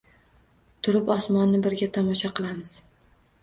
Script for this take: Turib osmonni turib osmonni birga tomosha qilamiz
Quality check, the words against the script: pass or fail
fail